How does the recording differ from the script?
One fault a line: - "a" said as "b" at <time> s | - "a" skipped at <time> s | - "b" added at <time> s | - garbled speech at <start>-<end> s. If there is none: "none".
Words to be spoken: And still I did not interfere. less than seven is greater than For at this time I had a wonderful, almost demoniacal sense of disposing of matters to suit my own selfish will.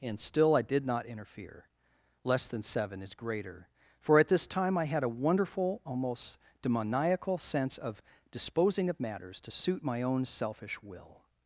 - "than" skipped at 3.7 s